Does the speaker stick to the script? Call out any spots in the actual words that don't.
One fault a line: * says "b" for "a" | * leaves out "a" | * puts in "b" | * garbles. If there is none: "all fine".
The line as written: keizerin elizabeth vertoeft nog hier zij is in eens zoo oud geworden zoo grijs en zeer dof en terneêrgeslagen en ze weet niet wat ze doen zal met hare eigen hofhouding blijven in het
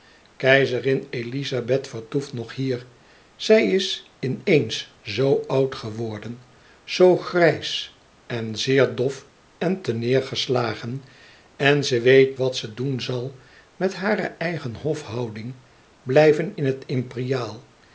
* leaves out "niet"